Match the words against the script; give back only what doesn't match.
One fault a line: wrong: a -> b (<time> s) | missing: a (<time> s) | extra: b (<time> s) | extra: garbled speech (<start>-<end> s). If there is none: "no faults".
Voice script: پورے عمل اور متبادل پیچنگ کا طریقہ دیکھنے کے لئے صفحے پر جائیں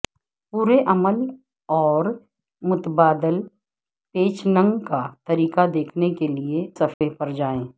no faults